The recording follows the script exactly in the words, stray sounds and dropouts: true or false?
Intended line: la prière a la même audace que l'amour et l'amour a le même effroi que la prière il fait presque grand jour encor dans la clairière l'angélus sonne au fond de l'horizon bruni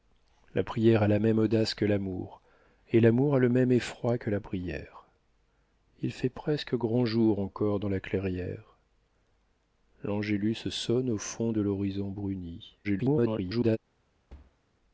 false